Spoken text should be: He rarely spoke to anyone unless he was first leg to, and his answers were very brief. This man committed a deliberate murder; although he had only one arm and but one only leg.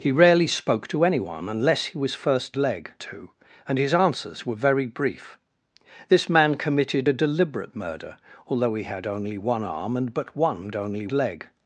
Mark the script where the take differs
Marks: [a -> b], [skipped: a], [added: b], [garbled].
He rarely spoke to anyone unless he was first leg to, and his answers were very brief. This man committed a deliberate murder; although he had only one arm and but one only leg.